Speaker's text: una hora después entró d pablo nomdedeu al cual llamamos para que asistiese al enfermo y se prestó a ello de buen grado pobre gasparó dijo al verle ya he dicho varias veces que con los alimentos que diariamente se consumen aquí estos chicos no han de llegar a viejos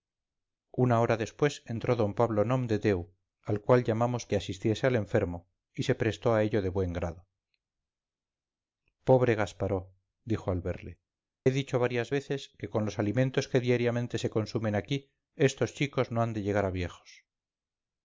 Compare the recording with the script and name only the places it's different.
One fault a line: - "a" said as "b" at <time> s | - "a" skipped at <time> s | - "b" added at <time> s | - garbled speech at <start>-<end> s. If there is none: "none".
- "para" skipped at 4.2 s
- "ya" skipped at 11.0 s